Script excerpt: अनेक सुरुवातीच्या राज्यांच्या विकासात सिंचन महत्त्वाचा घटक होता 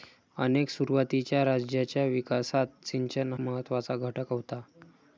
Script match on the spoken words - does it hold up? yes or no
yes